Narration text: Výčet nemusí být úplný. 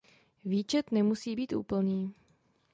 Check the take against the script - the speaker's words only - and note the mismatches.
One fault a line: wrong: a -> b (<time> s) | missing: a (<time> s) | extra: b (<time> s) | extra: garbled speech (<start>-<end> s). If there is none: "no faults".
no faults